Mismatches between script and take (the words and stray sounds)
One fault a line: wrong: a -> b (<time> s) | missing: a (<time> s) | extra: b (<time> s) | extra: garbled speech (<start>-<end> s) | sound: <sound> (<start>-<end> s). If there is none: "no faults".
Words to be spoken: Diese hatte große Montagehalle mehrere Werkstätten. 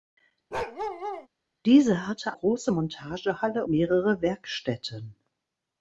sound: bark (0.5-1.3 s)